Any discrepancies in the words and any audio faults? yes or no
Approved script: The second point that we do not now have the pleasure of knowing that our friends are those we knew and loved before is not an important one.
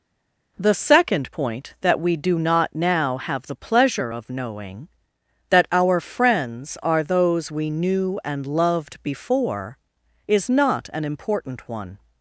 no